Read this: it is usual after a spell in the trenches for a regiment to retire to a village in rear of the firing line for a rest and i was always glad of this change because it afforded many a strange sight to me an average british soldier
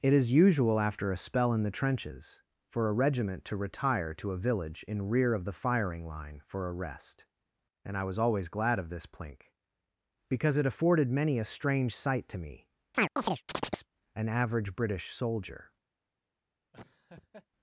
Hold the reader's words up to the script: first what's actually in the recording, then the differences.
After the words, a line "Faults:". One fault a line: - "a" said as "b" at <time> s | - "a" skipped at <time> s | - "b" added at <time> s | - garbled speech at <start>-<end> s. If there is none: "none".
it is usual after a spell in the trenches for a regiment to retire to a village in rear of the firing line for a rest and i was always glad of this plink because it afforded many a strange sight to me an average british soldier
Faults:
- "change" said as "plink" at 9.1 s